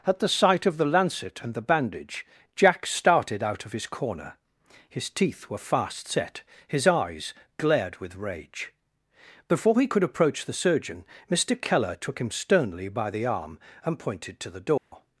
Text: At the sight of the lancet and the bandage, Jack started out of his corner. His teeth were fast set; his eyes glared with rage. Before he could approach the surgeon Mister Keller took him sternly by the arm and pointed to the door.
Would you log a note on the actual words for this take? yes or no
no